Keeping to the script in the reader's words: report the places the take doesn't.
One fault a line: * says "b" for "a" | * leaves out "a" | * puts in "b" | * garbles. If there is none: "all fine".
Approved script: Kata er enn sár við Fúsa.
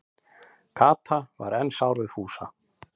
* says "var" for "er"